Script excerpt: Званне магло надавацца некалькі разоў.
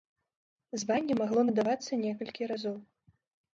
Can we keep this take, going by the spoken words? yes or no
yes